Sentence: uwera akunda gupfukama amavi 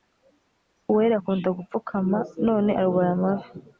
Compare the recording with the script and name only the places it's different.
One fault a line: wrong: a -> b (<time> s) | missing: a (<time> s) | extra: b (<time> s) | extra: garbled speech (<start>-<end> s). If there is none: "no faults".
extra: none arwaye (2.5 s)